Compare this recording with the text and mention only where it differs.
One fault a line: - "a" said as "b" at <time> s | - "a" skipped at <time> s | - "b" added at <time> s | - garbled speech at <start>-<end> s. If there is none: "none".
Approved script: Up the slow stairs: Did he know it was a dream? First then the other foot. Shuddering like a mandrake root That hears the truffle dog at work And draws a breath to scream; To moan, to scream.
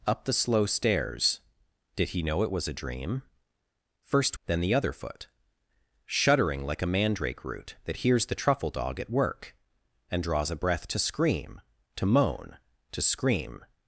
none